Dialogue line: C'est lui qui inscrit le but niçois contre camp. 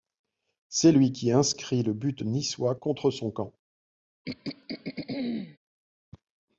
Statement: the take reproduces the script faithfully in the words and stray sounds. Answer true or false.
false